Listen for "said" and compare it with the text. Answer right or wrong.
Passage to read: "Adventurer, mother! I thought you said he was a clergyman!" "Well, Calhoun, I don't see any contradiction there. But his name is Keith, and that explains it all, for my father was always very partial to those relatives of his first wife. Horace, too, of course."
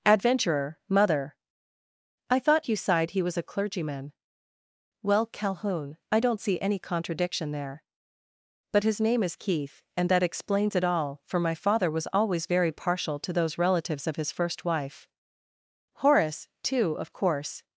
wrong